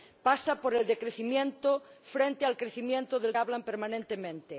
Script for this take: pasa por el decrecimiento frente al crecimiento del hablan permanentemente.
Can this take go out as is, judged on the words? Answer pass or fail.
pass